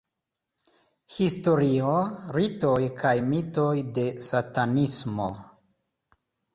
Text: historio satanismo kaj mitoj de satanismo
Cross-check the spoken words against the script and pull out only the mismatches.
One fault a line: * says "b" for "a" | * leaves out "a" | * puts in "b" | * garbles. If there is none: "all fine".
* says "ritoj" for "satanismo"